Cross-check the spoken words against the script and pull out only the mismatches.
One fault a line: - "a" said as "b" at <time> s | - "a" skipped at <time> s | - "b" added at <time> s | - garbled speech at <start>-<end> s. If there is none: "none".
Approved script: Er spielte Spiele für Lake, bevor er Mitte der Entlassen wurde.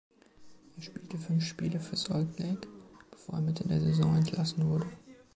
- "fünf" added at 1.2 s
- "Salt" added at 1.9 s
- "Saison" added at 3.8 s